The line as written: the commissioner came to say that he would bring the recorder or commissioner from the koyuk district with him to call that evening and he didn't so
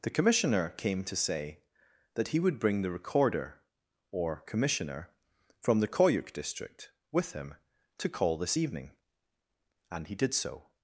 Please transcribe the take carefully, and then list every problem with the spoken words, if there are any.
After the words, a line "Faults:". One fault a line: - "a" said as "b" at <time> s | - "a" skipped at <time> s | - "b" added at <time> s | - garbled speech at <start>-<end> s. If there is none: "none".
the commissioner came to say that he would bring the recorder or commissioner from the koyuk district with him to call this evening and he did so
Faults:
- "that" said as "this" at 8.4 s
- "didn't" said as "did" at 10.1 s